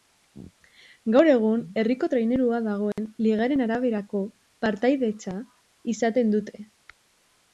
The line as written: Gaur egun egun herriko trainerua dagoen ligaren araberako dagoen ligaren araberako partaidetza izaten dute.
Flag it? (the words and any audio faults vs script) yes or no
yes